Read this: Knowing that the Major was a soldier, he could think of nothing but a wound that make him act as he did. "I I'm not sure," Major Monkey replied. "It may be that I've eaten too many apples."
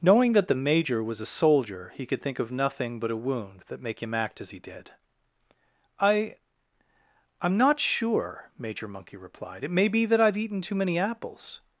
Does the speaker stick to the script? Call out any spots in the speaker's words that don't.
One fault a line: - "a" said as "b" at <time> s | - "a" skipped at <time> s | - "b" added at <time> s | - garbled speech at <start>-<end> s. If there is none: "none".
none